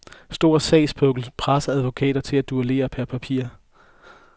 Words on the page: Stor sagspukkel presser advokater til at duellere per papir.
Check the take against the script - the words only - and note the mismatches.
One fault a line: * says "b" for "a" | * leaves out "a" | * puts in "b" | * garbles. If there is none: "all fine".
all fine